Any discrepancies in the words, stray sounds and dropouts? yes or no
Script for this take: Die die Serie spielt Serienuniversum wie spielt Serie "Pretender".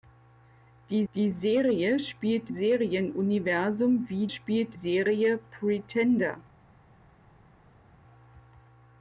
no